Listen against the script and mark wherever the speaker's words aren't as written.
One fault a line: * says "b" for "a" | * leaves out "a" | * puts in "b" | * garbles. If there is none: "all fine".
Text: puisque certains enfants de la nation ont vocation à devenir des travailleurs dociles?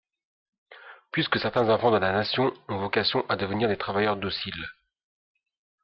all fine